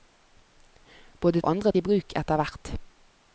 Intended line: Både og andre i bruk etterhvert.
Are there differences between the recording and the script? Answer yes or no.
no